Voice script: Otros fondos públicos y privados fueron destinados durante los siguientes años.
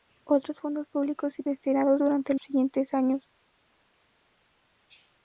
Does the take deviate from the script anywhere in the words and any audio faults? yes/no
yes